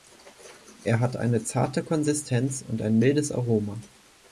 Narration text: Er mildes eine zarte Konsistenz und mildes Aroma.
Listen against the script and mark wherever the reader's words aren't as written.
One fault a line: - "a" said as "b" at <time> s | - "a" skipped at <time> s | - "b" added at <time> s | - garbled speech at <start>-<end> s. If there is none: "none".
- "mildes" said as "hat" at 1.0 s
- "ein" added at 2.8 s